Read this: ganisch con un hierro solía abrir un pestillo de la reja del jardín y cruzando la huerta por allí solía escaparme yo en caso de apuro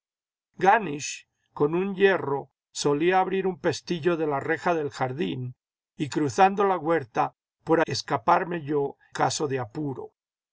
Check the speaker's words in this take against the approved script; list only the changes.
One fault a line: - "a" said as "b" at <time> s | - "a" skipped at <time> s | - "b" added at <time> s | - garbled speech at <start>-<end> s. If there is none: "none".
- "allí solía" skipped at 7.8 s
- "en" skipped at 8.9 s